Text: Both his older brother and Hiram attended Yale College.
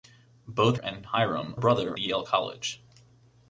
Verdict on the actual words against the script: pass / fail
fail